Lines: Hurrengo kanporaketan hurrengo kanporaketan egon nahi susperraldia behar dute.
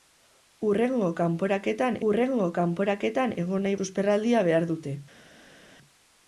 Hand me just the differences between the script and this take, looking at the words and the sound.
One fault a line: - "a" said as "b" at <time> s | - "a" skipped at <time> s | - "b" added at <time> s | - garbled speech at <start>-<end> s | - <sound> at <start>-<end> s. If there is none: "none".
none